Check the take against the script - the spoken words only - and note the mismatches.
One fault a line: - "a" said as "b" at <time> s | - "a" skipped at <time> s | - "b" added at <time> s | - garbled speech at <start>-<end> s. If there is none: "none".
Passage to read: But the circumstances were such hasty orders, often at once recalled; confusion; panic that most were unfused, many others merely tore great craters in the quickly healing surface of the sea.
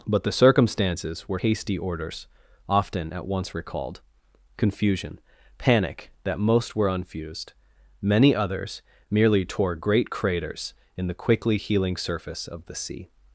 - "such" skipped at 1.4 s